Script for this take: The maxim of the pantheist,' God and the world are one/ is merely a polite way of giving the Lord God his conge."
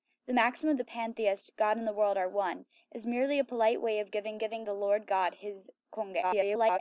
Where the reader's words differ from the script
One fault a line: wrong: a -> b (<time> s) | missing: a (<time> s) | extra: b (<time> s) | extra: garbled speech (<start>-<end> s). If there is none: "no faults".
extra: giving (4.4 s)
extra: garbled speech (6.2-6.8 s)